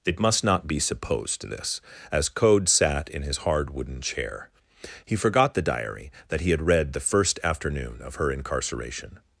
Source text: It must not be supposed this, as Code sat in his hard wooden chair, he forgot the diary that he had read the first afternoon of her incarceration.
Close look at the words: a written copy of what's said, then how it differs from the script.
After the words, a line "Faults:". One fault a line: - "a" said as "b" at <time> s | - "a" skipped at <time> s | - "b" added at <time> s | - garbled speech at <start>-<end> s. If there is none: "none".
It must not be supposed this, as Code sat in his hard wooden chair, he forgot the diary that he had read the first afternoon of her incarceration.
Faults:
none